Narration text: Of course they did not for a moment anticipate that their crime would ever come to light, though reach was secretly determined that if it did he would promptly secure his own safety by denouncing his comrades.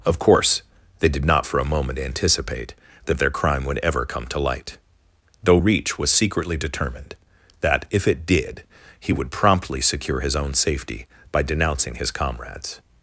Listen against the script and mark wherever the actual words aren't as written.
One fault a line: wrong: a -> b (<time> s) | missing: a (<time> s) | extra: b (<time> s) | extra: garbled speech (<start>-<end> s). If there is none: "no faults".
no faults